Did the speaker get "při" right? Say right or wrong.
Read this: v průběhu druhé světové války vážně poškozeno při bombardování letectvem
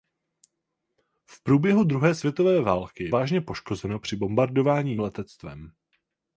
right